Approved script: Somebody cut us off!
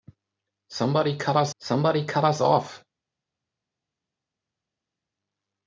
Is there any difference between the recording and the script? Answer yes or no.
yes